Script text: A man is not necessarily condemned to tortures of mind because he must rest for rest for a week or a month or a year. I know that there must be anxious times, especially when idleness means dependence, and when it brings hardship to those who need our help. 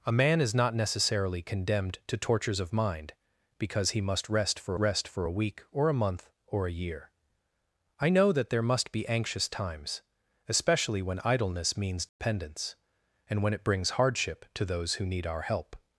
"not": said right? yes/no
yes